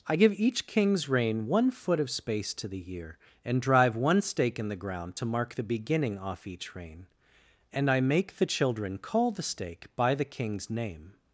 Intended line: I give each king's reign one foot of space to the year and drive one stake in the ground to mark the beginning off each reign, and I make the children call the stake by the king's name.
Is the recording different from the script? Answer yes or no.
no